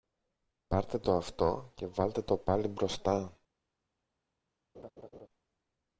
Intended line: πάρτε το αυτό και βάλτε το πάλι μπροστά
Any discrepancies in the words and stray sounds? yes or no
yes